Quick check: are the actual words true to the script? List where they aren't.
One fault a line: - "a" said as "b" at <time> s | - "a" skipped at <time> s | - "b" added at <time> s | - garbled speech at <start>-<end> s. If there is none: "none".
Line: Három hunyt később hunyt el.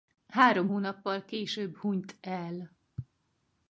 - "hunyt" said as "hónappal" at 0.7 s